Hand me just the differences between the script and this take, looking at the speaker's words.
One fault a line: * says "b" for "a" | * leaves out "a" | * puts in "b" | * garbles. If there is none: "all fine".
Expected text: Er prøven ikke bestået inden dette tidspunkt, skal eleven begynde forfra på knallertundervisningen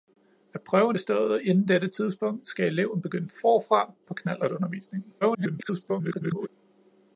* leaves out "ikke"
* garbles